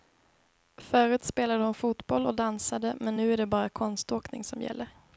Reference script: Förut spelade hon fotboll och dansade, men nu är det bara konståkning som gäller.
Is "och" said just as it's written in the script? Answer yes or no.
yes